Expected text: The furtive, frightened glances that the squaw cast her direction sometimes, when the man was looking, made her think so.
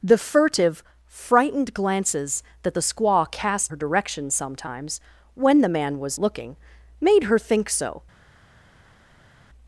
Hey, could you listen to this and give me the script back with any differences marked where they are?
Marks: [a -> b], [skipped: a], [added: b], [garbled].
The furtive, frightened glances that the squaw cast her direction sometimes, when the man was looking, made her think so.